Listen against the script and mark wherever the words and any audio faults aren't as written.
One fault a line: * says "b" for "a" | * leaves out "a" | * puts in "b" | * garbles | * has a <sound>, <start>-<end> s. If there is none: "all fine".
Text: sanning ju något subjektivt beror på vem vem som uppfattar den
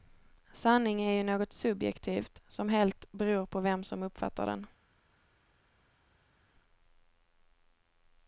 * puts in "är"
* puts in "som helt"
* leaves out "vem"